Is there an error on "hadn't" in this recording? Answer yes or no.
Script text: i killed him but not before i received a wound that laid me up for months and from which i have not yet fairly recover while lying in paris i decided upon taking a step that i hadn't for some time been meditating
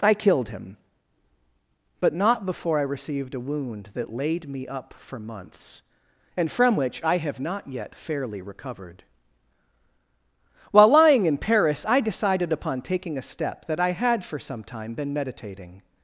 yes